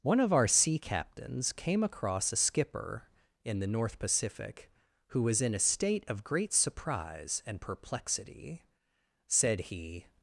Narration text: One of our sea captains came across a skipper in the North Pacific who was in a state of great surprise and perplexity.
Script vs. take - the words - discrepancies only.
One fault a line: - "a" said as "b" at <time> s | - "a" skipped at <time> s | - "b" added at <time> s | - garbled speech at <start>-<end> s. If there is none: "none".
- "Said he" added at 9.3 s